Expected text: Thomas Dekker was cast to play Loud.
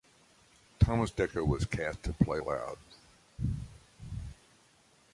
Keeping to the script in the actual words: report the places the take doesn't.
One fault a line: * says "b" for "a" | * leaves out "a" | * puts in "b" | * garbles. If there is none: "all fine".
all fine